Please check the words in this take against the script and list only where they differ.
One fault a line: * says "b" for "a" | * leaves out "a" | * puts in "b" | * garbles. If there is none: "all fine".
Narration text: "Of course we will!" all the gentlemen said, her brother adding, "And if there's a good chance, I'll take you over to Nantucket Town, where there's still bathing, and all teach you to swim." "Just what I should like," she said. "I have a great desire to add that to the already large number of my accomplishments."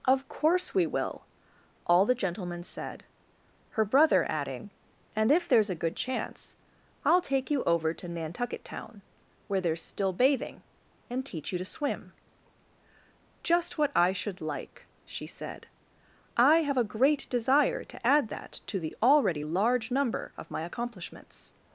* leaves out "all"